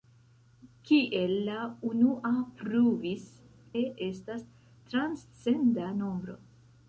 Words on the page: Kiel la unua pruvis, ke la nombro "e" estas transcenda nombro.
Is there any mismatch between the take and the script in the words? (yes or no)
yes